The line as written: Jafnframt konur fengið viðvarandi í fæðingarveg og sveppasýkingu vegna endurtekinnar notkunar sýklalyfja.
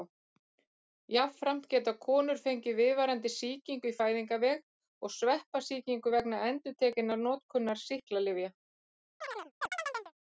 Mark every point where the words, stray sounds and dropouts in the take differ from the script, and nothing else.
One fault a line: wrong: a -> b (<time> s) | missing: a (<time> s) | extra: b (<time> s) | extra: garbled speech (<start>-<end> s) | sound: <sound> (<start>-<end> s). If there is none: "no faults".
extra: geta (1.7 s)
extra: sýkingu (3.4 s)
sound: chirp (9.2-10.1 s)